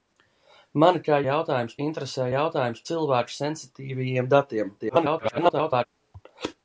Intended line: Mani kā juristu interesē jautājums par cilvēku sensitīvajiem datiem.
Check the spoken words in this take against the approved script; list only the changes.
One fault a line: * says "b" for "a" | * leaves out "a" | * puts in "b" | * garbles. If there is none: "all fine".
* says "jautājums" for "juristu"
* leaves out "par"
* garbles